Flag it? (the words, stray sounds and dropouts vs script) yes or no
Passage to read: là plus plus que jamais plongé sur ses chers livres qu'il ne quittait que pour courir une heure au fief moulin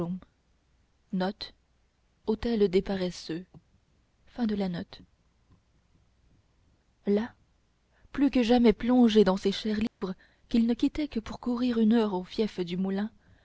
yes